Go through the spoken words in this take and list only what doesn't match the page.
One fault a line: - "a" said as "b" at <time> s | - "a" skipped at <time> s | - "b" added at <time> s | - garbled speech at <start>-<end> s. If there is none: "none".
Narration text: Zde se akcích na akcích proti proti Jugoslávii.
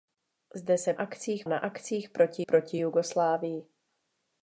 none